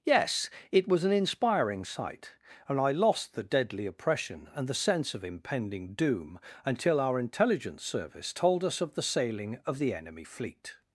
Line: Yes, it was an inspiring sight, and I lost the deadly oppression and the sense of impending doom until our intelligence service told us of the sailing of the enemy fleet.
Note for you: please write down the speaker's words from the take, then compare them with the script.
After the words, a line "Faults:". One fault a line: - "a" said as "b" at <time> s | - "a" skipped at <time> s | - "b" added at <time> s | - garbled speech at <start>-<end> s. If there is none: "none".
Yes, it was an inspiring sight, and I lost the deadly oppression and the sense of impending doom until our intelligence service told us of the sailing of the enemy fleet.
Faults:
none